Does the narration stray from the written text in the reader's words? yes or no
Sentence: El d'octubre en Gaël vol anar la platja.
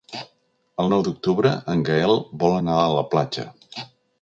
yes